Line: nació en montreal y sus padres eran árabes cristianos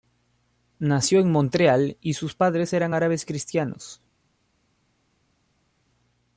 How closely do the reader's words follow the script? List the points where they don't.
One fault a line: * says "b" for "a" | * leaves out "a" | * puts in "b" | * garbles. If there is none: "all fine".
all fine